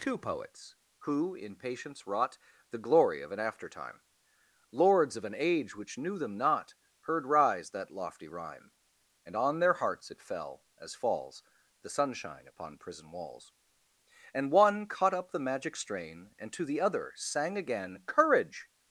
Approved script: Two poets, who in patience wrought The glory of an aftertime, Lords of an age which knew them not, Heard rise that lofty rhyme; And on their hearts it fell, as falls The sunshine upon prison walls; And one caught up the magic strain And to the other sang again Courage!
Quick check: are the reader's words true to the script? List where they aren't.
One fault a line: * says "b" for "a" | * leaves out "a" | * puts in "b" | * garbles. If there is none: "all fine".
all fine